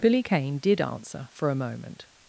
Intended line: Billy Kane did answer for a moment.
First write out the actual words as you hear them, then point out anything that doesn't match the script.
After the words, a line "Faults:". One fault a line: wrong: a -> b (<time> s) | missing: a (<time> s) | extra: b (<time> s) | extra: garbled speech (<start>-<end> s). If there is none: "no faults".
Billy Kane did answer for a moment.
Faults:
no faults